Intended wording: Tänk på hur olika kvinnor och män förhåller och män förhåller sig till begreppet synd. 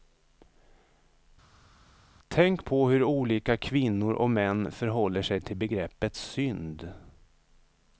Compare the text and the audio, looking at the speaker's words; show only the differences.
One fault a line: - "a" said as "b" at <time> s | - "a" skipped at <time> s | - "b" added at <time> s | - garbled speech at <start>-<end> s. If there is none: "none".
- "och män förhåller" skipped at 5.2 s